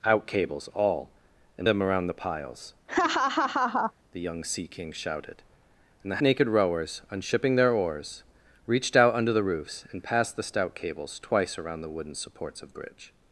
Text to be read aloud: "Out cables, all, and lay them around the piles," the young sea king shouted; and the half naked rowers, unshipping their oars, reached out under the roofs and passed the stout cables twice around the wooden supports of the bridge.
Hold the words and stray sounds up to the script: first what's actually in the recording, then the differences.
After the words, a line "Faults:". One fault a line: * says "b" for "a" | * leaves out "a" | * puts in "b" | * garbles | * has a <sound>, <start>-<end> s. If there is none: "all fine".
"Out cables, all, and them around the piles," the young sea king shouted; and the naked rowers, unshipping their oars, reached out under the roofs and passed the stout cables twice around the wooden supports of bridge.
Faults:
* leaves out "lay"
* has a laugh, 2.9-3.9 s
* leaves out "half"
* leaves out "the"